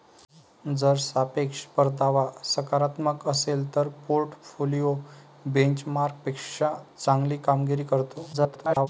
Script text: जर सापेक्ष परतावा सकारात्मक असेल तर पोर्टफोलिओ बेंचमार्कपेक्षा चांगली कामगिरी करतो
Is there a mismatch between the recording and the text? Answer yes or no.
yes